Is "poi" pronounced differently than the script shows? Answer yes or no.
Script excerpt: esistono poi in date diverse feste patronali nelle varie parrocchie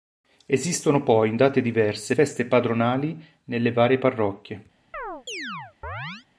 no